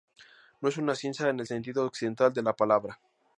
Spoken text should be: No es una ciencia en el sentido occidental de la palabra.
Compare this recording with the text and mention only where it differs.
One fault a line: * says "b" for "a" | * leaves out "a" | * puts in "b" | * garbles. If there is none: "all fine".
all fine